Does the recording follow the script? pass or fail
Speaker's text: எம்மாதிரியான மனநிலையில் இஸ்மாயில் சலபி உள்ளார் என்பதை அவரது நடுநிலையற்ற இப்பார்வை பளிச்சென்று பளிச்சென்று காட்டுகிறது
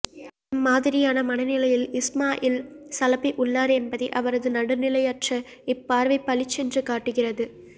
fail